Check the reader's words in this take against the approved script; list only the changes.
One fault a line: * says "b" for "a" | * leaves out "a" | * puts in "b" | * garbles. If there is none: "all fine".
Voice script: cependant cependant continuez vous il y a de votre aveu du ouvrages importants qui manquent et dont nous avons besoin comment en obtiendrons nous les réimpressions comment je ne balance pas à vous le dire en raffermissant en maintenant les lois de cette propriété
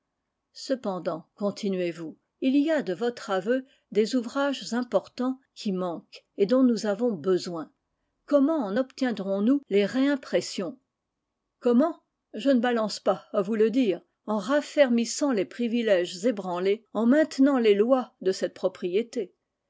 * leaves out "cependant"
* says "des" for "du"
* puts in "les privilèges ébranlés"